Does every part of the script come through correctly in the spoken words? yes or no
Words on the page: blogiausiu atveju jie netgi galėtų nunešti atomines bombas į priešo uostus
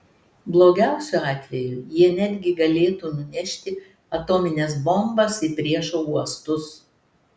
yes